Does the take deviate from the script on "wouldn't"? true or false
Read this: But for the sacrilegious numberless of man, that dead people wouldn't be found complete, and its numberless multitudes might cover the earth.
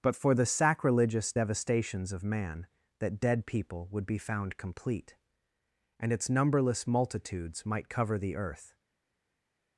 true